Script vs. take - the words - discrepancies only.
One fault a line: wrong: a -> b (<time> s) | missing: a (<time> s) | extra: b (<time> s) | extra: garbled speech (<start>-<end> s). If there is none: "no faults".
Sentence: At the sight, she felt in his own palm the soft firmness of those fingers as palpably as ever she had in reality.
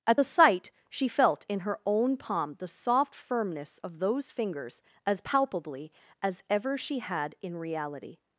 wrong: his -> her (1.6 s)